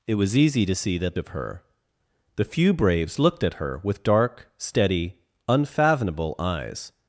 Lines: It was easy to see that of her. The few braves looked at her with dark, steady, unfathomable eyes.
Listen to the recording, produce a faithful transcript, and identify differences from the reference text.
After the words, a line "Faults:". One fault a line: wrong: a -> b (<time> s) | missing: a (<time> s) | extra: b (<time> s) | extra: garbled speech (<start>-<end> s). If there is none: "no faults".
It was easy to see that of her. The few braves looked at her with dark, steady, unfathomable eyes.
Faults:
no faults